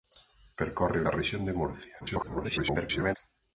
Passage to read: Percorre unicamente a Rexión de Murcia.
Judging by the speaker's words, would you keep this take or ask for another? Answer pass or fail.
fail